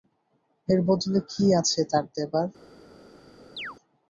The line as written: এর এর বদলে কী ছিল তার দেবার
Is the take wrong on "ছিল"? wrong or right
wrong